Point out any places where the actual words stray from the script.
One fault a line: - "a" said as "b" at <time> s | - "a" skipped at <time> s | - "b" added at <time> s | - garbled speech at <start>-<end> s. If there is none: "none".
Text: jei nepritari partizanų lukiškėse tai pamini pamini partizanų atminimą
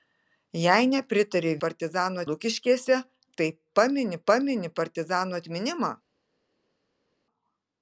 none